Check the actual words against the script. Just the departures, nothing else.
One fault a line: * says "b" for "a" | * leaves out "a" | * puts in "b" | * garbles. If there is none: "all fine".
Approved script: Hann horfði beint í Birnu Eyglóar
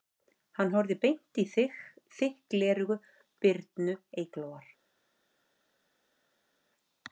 * puts in "þykk gleraugu"